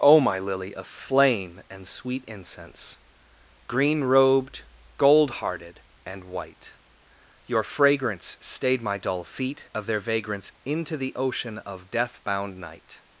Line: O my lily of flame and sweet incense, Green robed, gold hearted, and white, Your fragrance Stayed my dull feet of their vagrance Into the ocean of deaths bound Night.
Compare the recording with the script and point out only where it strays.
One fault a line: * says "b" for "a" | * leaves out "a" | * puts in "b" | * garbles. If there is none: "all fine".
* says "death" for "deaths"